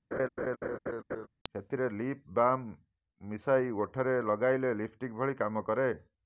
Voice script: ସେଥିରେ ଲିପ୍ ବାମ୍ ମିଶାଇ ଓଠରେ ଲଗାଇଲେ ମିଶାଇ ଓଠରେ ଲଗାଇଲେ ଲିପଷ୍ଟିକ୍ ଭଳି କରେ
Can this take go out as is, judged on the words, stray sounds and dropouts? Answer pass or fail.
fail